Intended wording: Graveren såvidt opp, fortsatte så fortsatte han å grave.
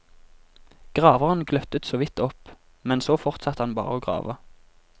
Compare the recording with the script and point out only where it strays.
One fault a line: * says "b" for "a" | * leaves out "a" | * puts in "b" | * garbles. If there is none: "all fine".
* puts in "gløttet"
* says "men" for "fortsatte"
* puts in "bare"